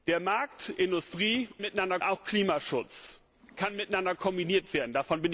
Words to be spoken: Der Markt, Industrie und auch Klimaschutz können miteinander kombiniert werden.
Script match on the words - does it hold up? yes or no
no